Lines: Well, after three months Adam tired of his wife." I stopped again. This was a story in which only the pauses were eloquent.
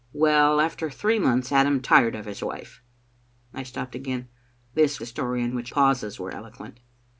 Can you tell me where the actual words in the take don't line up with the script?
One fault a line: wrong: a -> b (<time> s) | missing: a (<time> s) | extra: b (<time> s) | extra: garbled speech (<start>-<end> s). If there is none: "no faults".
missing: was (5.0 s)
missing: only the (5.7 s)